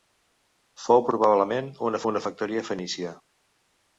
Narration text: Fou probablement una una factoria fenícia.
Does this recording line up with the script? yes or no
yes